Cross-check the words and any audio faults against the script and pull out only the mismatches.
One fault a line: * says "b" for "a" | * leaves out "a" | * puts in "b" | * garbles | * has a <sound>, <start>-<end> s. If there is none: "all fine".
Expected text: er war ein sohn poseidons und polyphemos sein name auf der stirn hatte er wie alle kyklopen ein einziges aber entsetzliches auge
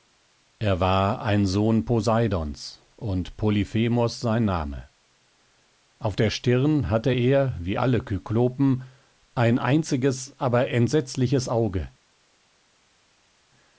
all fine